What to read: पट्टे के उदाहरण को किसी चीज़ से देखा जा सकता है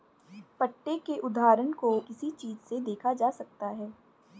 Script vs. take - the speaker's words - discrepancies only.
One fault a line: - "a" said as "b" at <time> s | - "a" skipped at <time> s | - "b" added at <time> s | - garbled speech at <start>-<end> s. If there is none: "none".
none